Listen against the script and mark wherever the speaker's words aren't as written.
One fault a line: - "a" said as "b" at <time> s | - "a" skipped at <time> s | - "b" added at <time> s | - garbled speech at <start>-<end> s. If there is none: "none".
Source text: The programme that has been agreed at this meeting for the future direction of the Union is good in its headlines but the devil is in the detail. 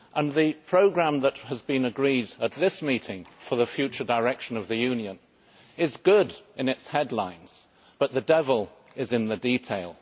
none